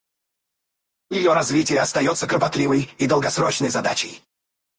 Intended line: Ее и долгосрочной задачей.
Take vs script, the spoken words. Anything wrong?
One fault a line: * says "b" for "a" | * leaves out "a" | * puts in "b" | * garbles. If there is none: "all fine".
* puts in "развитие остается кропотливой"